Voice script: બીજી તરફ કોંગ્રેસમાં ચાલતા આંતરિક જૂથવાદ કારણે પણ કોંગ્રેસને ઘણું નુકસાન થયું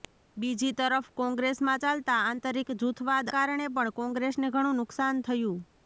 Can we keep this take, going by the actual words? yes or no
yes